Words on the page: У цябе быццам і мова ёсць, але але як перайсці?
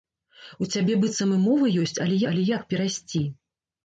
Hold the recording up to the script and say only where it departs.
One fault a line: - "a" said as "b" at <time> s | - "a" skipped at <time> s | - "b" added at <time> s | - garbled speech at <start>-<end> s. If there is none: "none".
none